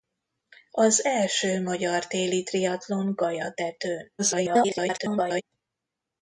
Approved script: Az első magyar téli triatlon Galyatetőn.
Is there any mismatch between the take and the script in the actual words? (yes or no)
yes